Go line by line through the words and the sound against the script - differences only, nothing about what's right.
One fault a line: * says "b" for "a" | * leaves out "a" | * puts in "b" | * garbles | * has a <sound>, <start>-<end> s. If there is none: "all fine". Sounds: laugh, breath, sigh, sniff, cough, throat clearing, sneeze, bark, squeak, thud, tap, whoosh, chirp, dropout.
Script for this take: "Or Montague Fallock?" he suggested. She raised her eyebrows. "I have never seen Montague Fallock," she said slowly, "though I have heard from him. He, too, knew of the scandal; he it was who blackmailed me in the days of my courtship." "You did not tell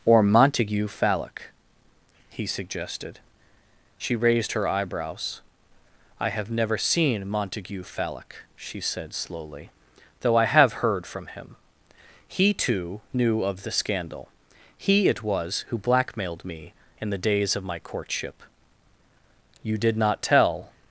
all fine